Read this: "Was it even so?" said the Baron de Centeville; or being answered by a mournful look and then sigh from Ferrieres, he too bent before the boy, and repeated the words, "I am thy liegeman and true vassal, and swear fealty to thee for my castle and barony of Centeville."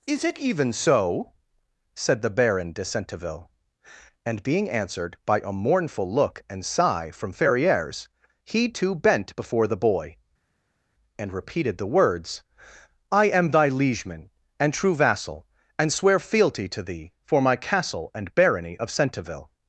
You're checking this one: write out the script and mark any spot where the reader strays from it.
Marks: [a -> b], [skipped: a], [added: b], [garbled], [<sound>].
["Was -> Is] it even so?" said the Baron de Centeville; [or -> and] being answered by a mournful look and [skipped: then] sigh from Ferrieres, he too bent before the boy, and repeated the words, "I am thy liegeman and true vassal, and swear fealty to thee for my castle and barony of Centeville."